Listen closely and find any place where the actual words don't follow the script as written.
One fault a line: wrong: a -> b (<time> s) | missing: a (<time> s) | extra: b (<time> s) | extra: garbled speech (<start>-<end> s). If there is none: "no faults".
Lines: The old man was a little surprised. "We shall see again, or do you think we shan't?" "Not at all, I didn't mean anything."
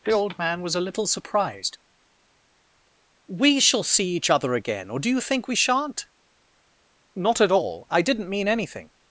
extra: each other (4.2 s)